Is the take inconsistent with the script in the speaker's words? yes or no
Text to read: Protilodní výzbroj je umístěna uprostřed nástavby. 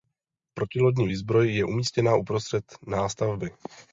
no